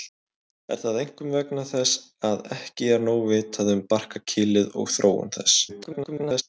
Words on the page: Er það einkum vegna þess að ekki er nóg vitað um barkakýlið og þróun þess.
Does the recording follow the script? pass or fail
fail